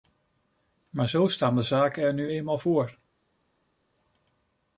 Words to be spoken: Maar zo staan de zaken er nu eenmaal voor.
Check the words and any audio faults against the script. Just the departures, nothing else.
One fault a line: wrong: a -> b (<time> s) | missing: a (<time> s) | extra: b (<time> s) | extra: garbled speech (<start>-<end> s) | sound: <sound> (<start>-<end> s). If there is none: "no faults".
no faults